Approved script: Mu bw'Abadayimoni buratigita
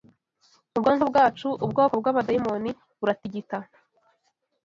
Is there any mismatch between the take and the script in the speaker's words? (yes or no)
yes